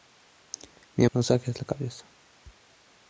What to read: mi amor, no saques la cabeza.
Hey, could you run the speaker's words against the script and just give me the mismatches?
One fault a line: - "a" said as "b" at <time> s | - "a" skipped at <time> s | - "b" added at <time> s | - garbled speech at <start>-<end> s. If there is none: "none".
- "amor" skipped at 1.1 s